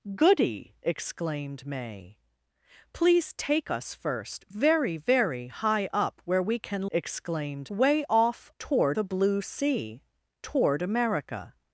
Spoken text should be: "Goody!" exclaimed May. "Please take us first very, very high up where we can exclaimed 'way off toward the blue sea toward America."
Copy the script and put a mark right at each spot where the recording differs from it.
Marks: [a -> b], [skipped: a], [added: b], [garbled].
"Goody!" exclaimed May. "Please take us first very, very high up where we can exclaimed 'way off toward the blue sea toward America."